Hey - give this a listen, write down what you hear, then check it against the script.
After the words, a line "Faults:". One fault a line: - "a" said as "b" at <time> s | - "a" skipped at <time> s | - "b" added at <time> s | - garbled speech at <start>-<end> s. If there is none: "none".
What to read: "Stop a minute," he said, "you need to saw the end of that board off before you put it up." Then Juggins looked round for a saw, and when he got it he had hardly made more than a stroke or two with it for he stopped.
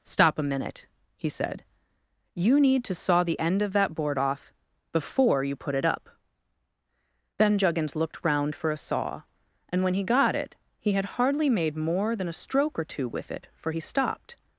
"Stop a minute," he said, "you need to saw the end of that board off before you put it up." Then Juggins looked round for a saw, and when he got it he had hardly made more than a stroke or two with it for he stopped.
Faults:
none